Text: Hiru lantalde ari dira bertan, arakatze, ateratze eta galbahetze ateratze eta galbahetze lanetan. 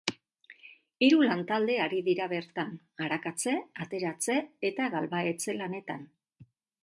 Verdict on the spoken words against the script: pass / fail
fail